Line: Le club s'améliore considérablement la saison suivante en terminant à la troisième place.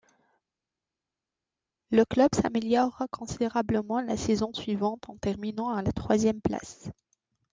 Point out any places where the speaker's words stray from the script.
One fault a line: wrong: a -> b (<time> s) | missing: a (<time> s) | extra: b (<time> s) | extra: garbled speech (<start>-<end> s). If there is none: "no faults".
no faults